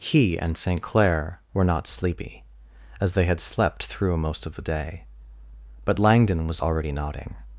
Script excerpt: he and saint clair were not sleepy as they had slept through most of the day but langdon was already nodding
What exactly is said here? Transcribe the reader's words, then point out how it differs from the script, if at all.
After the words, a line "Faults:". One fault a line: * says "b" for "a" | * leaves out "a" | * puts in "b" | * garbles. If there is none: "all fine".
he and saint clair were not sleepy as they had slept through most of the day but langdon was already nodding
Faults:
all fine